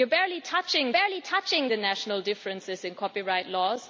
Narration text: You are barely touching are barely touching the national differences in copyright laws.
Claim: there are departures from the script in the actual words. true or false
false